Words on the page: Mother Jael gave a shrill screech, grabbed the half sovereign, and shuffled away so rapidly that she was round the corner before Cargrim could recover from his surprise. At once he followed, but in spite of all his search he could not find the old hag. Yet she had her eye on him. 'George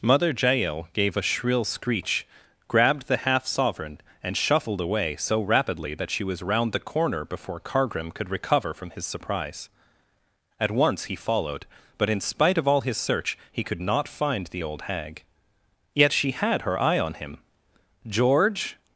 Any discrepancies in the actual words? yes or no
no